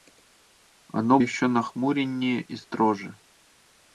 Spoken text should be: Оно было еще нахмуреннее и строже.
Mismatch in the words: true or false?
true